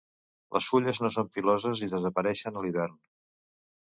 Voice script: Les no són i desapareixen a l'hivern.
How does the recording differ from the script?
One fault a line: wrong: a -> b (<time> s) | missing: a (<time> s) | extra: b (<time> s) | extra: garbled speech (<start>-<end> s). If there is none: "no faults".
extra: fulles (0.7 s)
extra: piloses (1.4 s)